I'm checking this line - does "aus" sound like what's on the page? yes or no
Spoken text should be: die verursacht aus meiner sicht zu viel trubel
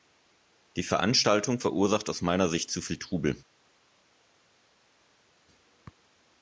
yes